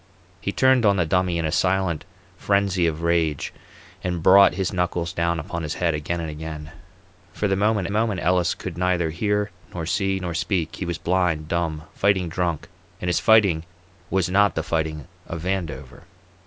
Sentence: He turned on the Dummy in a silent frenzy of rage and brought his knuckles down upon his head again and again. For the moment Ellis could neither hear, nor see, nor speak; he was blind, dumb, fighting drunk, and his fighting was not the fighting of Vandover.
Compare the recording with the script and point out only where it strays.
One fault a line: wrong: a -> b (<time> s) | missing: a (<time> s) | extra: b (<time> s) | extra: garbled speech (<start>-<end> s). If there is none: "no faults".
extra: moment (7.9 s)